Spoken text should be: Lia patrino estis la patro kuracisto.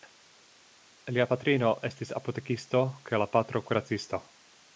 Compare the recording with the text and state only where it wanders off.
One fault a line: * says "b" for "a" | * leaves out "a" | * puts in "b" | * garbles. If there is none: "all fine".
* puts in "apotekisto kaj"